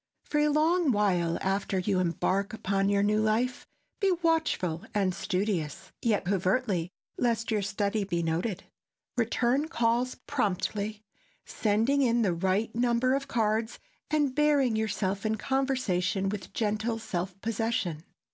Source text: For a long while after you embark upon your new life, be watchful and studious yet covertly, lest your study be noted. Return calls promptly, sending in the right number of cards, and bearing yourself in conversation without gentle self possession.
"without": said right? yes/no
no